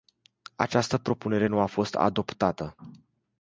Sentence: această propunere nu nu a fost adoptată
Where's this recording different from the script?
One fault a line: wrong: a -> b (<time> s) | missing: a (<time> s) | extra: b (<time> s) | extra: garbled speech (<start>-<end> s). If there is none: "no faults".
missing: nu (1.6 s)